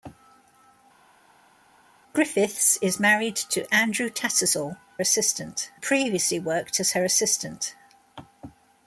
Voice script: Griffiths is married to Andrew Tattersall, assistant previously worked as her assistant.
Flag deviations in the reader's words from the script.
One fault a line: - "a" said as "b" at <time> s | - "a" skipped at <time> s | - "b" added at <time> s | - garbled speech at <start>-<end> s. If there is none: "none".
none